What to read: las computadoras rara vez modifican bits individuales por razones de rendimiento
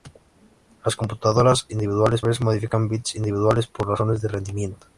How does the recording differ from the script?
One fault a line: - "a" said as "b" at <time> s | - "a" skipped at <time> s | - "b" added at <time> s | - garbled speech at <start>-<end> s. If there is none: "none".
- "rara" said as "individuales" at 1.7 s